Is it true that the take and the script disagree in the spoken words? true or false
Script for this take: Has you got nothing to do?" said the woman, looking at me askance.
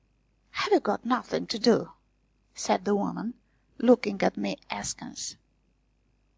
true